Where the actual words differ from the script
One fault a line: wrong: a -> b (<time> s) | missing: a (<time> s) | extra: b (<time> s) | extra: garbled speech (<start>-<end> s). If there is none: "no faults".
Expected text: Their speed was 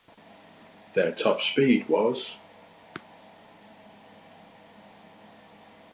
extra: top (1.1 s)